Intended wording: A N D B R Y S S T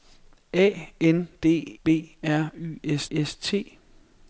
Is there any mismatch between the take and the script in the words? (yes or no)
no